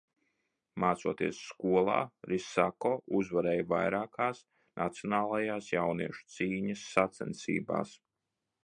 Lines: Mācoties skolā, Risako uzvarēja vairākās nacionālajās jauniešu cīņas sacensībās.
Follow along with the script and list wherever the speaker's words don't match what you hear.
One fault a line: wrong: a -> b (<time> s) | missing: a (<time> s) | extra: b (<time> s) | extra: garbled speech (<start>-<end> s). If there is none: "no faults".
no faults